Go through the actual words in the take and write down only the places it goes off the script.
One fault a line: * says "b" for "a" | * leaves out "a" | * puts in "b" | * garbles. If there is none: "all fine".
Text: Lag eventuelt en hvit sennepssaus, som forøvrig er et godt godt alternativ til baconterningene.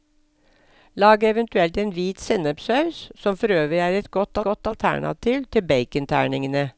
all fine